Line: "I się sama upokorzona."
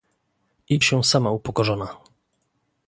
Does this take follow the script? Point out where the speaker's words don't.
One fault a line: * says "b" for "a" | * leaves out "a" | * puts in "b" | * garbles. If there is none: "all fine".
all fine